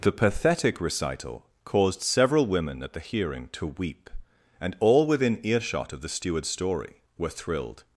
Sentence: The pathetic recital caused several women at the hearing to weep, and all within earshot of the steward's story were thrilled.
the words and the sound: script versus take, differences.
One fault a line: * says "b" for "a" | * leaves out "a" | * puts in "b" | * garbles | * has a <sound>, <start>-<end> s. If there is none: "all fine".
all fine